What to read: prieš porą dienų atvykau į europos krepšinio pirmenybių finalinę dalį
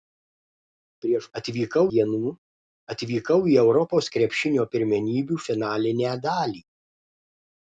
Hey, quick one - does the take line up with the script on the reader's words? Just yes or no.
no